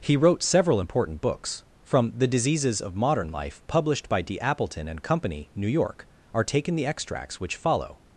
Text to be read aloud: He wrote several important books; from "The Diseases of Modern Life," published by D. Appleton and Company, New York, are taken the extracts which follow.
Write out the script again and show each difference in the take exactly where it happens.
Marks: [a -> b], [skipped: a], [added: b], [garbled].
He wrote several important books; from "The Diseases of Modern Life," published by D. Appleton and Company, New York, are taken the extracts which follow.